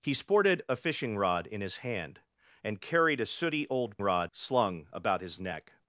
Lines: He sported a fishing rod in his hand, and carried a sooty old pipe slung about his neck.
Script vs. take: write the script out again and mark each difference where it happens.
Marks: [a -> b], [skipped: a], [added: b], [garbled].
He sported a fishing rod in his hand, and carried a sooty old [pipe -> rod] slung about his neck.